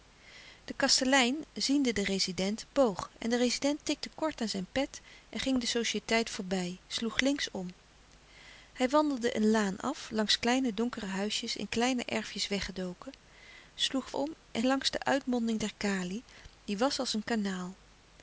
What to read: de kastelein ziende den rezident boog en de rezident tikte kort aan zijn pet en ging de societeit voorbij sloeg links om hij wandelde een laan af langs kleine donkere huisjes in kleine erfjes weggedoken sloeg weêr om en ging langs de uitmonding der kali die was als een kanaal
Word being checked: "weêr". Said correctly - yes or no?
no